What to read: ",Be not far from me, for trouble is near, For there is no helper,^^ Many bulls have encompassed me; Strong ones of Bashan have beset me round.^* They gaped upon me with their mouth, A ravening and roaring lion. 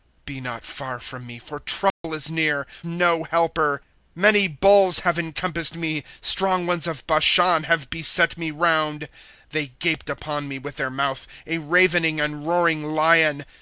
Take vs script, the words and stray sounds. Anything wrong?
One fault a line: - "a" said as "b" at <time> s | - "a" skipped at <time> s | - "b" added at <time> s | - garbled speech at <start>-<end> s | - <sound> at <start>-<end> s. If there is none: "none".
- dropout at 1.9-2.0 s
- "For there is" skipped at 2.6 s